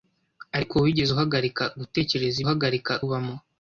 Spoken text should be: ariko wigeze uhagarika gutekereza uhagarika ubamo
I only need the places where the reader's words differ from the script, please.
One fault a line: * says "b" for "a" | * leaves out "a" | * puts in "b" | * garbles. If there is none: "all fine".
all fine